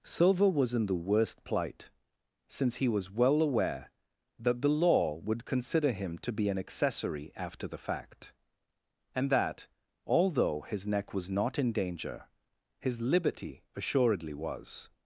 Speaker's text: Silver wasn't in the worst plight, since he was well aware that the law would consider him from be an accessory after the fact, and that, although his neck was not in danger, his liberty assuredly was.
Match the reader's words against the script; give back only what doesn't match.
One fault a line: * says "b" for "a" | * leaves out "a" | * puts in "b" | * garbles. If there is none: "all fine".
* says "was" for "wasn't"
* says "to" for "from"